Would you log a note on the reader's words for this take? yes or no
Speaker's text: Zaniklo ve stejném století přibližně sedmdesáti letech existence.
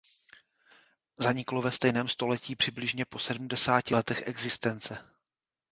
yes